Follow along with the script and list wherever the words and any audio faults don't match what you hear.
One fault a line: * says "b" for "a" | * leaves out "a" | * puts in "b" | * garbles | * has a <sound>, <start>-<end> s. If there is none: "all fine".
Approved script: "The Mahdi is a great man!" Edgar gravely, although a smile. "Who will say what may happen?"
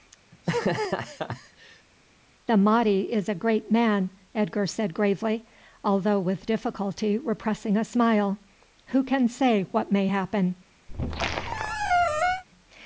* has a laugh, 0.3-1.9 s
* puts in "said"
* puts in "with difficulty repressing"
* says "can" for "will"
* has a squeak, 10.9-12.4 s